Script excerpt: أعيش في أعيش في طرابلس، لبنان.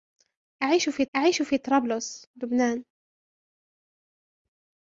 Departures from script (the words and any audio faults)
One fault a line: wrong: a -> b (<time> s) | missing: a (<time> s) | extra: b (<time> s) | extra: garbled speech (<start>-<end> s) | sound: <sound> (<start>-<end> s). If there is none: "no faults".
no faults